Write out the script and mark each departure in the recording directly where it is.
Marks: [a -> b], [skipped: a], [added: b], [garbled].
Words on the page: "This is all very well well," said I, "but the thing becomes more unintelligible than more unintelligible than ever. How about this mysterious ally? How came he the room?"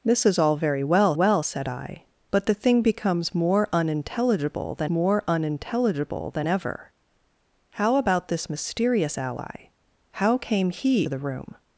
"This is all very well well," said I, "but the thing becomes more unintelligible than more unintelligible than ever. How about this mysterious ally? How came he the room?"